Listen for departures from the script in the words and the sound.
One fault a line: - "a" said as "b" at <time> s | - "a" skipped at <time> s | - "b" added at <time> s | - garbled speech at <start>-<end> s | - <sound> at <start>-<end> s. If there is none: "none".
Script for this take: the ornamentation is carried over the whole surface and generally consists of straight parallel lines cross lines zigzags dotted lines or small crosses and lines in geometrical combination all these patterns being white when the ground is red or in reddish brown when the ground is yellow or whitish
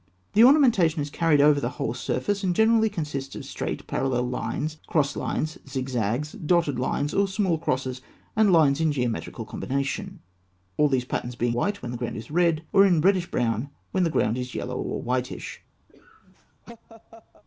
- laugh at 15.9-17.4 s